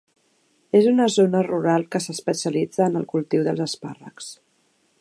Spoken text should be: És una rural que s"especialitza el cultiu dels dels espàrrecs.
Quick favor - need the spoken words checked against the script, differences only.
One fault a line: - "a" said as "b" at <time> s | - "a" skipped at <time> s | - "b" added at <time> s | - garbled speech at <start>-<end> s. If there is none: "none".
- "zona" added at 1.1 s
- "en" added at 2.9 s
- "dels" skipped at 3.6 s